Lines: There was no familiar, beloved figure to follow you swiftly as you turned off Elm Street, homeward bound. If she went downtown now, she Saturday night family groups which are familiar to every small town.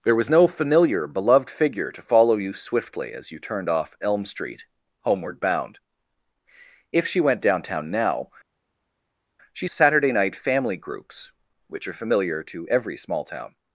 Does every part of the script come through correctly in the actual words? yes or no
yes